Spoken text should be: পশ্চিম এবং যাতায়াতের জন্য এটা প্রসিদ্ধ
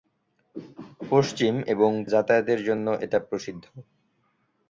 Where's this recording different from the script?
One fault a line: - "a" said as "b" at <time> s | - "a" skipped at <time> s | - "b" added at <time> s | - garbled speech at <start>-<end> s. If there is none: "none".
none